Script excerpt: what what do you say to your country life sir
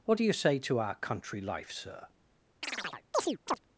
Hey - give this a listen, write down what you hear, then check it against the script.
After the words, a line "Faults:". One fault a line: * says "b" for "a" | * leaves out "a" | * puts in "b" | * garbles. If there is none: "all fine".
what do you say to our country life sir
Faults:
* leaves out "what"
* says "our" for "your"